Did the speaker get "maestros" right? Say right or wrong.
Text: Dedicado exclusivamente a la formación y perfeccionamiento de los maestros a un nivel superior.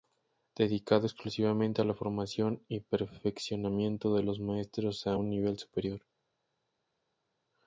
right